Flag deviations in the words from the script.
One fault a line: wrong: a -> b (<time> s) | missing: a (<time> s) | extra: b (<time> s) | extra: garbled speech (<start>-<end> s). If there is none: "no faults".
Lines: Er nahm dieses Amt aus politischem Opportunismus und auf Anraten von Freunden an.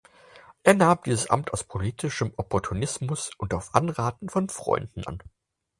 no faults